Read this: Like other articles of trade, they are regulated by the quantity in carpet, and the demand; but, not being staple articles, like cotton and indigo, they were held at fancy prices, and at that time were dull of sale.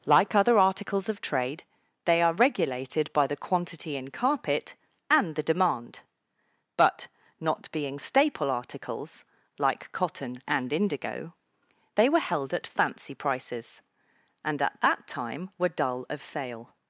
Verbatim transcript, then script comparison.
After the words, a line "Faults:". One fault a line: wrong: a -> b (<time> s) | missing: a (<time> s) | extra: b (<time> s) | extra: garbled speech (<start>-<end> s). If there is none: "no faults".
Like other articles of trade, they are regulated by the quantity in carpet, and the demand; but, not being staple articles, like cotton and indigo, they were held at fancy prices, and at that time were dull of sale.
Faults:
no faults